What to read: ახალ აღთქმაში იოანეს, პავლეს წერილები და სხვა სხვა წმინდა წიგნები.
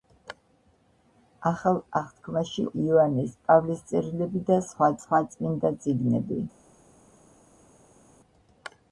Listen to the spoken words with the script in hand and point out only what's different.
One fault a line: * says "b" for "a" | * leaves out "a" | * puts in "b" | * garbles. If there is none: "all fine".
all fine